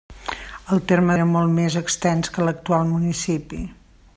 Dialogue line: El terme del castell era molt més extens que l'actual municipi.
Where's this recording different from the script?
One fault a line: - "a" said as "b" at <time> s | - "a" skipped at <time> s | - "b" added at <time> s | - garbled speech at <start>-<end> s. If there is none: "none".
- "del castell" skipped at 1.2 s